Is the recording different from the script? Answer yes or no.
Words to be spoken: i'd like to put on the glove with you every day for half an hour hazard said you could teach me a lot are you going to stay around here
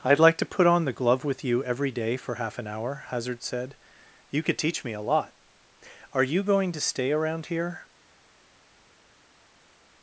no